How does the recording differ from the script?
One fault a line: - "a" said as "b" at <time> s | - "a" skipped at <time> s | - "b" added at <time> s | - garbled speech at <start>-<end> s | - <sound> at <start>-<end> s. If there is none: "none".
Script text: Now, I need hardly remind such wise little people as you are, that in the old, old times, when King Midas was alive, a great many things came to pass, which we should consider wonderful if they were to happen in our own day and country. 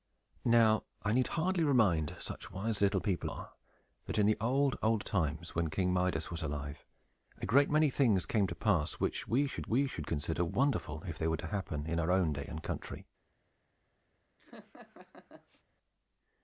- "as you" skipped at 3.3 s
- "we should" added at 9.7 s
- laugh at 14.4-15.6 s